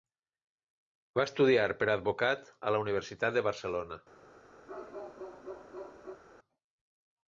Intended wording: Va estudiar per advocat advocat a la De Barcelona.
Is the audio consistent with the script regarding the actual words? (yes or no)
no